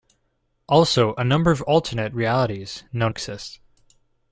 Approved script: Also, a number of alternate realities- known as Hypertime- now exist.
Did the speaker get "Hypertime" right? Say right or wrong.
wrong